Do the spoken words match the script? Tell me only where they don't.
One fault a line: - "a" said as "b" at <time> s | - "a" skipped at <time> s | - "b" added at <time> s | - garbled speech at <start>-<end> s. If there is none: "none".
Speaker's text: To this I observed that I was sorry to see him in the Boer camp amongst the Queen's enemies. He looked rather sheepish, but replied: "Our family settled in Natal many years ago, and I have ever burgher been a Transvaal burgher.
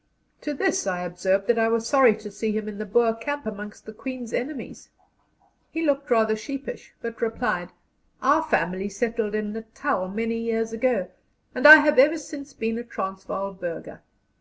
- "burgher" said as "since" at 12.2 s